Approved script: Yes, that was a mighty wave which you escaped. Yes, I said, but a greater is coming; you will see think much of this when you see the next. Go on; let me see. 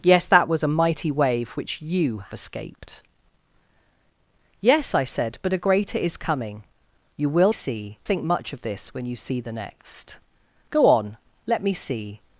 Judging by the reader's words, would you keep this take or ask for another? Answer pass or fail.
pass